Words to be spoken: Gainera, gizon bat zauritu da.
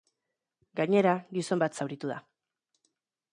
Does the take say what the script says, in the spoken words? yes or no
yes